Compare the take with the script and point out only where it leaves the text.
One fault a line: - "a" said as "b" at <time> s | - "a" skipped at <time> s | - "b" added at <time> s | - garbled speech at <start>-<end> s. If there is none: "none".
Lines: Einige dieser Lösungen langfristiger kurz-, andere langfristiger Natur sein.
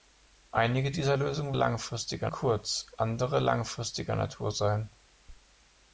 none